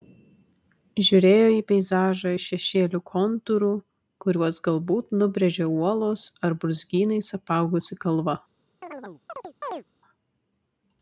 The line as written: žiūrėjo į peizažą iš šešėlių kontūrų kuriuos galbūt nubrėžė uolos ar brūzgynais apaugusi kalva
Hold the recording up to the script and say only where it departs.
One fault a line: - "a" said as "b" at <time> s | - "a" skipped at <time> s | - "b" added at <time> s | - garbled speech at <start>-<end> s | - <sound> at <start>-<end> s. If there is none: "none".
- chirp at 8.8-9.8 s